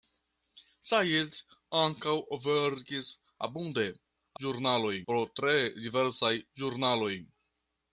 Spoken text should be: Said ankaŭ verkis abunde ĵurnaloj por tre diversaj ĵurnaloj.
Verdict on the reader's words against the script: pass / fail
pass